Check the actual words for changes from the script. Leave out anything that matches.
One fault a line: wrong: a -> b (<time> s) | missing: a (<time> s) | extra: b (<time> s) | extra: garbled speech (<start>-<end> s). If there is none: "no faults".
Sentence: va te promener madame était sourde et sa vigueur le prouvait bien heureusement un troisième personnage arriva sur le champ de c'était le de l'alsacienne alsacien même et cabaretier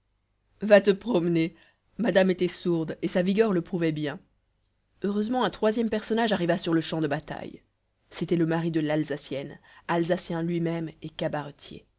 extra: bataille (7.1 s)
extra: mari (8.5 s)
extra: lui (10.4 s)